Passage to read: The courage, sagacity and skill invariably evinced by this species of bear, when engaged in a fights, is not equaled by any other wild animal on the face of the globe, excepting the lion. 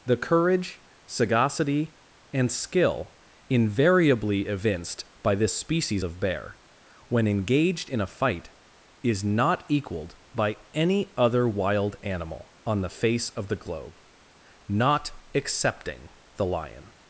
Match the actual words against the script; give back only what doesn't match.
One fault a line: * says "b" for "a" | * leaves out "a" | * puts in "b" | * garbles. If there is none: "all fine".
* says "fight" for "fights"
* puts in "not"